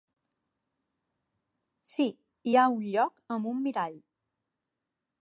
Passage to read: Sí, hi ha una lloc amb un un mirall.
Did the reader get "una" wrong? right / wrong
wrong